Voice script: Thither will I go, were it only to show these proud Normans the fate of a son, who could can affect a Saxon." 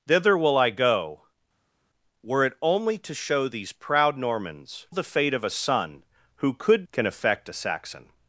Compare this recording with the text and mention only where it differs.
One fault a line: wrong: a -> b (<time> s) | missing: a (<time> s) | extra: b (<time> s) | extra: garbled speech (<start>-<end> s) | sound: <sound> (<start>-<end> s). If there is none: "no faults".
no faults